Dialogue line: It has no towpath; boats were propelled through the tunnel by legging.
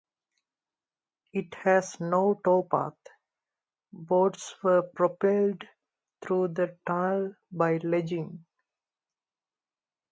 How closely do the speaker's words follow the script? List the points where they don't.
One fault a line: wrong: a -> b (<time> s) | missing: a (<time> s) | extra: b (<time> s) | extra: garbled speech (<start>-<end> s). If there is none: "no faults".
no faults